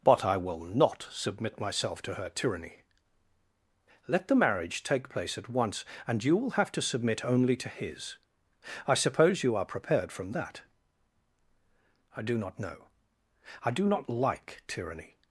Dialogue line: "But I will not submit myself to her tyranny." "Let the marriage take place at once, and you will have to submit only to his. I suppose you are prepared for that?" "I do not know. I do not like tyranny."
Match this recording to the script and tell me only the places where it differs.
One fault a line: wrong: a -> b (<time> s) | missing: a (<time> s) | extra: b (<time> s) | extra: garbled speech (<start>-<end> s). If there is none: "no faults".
wrong: for -> from (10.1 s)